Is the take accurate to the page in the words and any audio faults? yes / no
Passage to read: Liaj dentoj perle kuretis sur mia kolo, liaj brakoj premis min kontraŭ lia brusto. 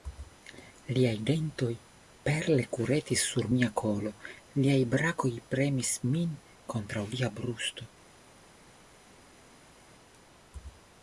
yes